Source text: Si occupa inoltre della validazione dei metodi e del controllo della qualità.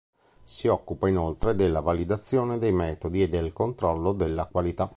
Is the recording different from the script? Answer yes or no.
no